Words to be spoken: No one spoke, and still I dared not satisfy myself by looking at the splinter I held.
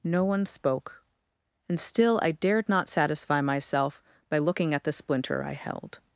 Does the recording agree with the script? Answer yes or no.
yes